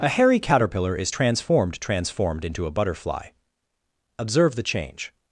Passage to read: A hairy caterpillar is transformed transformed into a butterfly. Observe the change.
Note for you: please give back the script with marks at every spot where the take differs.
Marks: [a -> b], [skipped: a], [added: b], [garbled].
A hairy caterpillar is transformed transformed into a butterfly. Observe the change.